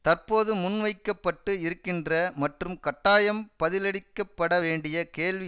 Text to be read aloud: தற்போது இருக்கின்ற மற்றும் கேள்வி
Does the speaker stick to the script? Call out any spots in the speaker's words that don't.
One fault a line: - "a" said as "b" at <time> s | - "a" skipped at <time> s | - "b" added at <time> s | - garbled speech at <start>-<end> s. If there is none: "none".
- "முன்வைக்க பட்டு" added at 0.6 s
- "கட்டாயம் பதிலளிக்கப்பட வேண்டிய" added at 2.8 s